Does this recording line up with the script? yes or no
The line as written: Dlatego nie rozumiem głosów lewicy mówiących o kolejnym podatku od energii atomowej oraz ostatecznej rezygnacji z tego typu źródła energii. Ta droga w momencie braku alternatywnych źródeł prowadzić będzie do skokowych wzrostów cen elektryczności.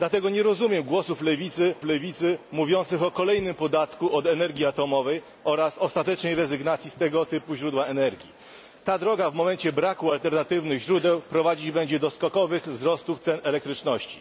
no